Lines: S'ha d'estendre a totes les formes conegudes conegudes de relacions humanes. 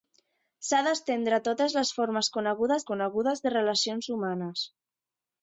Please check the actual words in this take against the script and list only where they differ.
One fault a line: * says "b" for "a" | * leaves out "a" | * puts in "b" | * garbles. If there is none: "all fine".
all fine